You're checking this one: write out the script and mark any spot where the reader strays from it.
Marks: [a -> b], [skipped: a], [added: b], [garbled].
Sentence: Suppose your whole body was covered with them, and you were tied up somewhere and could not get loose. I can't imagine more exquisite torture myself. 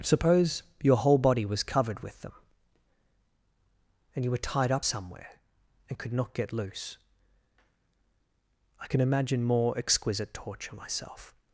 Suppose your whole body was covered with them, and you were tied up somewhere and could not get loose. I [can't -> can] imagine more exquisite torture myself.